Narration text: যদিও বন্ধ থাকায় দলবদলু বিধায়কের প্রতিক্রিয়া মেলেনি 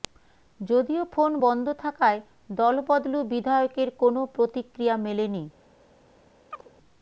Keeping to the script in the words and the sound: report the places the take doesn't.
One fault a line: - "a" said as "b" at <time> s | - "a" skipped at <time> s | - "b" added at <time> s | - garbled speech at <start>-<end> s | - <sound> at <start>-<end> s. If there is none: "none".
- "ফোন" added at 1.1 s
- "কোনও" added at 4.0 s
- chirp at 6.5-6.7 s